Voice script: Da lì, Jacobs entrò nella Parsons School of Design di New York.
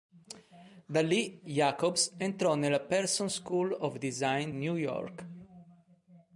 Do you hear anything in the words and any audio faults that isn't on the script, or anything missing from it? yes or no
yes